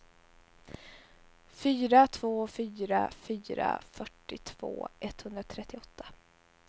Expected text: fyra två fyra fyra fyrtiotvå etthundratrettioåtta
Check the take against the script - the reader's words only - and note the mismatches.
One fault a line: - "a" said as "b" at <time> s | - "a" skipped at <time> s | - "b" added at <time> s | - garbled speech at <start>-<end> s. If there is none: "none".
none